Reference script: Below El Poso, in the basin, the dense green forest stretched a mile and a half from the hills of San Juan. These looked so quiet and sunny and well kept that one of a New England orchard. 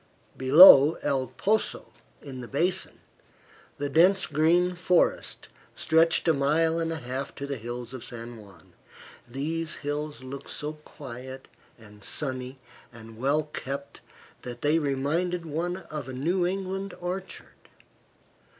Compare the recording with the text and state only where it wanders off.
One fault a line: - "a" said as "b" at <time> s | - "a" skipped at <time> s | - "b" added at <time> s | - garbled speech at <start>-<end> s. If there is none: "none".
- "from" said as "to" at 7.3 s
- "hills" added at 9.8 s
- "they reminded" added at 14.6 s